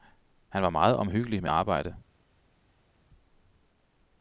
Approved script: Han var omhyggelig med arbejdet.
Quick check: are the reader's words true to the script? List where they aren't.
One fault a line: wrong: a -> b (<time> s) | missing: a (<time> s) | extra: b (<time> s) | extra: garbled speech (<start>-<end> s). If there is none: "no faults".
extra: meget (0.7 s)